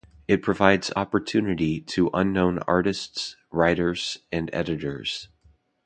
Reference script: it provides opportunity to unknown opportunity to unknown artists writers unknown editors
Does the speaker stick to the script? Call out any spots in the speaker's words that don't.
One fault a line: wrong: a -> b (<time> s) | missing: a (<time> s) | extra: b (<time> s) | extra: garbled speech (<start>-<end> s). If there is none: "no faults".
missing: opportunity to unknown (2.6 s)
wrong: unknown -> and (4.3 s)